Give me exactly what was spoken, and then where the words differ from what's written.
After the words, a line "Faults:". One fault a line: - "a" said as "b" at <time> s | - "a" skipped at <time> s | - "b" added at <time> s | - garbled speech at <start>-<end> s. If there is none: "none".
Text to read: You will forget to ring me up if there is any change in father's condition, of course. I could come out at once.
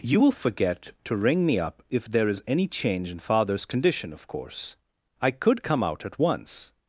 You will forget to ring me up if there is any change in father's condition, of course. I could come out at once.
Faults:
none